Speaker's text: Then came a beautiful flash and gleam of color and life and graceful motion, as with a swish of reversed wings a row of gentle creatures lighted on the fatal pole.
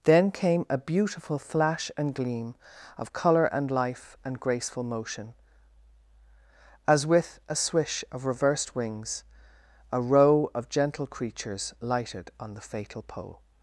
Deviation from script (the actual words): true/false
false